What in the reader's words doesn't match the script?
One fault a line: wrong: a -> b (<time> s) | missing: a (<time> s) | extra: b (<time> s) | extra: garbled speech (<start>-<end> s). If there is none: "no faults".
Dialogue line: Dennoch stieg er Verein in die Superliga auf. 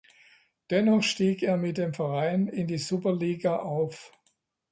extra: mit dem (1.6 s)